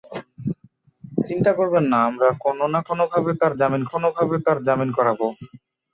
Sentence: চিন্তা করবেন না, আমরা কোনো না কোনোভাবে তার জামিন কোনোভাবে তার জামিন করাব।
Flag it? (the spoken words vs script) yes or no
no